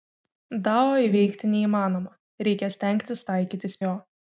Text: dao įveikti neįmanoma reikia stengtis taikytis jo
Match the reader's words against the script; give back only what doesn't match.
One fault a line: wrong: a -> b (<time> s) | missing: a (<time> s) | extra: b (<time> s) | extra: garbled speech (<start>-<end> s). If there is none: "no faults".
no faults